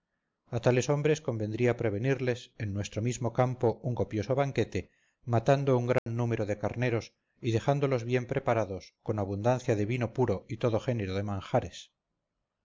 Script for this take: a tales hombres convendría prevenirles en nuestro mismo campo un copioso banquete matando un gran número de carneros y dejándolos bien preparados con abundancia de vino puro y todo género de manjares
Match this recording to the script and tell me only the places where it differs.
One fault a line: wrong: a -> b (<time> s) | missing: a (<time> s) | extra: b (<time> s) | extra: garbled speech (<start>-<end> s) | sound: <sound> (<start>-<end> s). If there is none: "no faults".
sound: dropout (6.0-6.1 s)